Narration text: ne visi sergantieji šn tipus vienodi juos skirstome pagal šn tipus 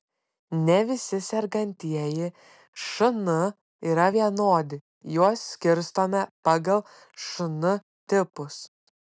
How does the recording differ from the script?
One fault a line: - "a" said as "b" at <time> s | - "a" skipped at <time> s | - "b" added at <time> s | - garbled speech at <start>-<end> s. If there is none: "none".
- "tipus" said as "yra" at 3.9 s